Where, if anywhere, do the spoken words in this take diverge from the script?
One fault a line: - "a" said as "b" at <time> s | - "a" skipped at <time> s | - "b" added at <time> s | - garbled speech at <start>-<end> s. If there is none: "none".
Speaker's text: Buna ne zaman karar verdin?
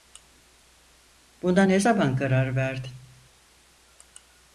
none